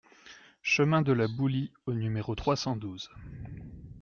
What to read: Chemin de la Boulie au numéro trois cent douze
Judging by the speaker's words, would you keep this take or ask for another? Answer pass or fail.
pass